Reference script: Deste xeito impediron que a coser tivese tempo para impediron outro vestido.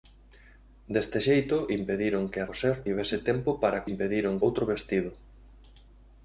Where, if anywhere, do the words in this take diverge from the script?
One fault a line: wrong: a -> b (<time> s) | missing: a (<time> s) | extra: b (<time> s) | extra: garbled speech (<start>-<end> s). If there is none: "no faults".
no faults